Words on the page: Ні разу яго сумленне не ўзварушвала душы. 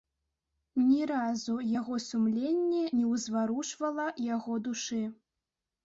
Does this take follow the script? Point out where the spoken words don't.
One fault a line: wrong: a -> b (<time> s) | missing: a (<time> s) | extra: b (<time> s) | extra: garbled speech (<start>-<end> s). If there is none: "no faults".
extra: яго (4.3 s)